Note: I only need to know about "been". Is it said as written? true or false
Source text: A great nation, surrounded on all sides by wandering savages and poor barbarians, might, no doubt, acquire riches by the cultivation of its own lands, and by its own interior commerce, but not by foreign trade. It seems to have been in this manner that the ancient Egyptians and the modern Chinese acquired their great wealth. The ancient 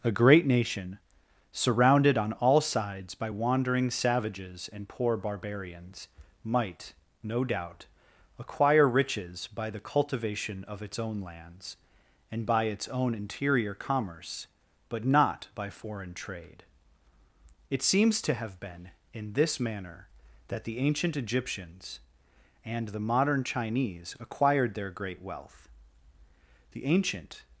true